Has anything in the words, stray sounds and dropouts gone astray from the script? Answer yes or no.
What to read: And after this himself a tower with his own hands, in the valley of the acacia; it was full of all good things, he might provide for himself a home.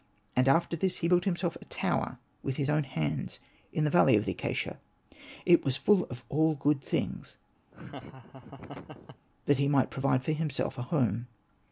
yes